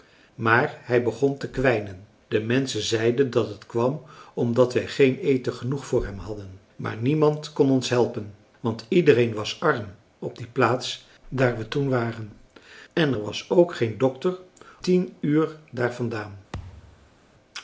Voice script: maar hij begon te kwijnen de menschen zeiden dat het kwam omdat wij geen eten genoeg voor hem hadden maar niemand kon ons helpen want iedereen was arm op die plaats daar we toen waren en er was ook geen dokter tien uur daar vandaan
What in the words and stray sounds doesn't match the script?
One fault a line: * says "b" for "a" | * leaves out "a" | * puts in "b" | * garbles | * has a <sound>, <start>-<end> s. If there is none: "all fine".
* has a thud, 16.5-17.2 s